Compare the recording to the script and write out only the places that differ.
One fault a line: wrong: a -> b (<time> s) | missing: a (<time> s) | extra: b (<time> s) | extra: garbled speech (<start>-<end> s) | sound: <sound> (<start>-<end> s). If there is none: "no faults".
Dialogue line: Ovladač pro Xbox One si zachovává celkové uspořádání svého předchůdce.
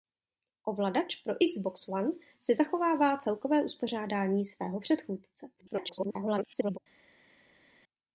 extra: garbled speech (5.6-6.8 s)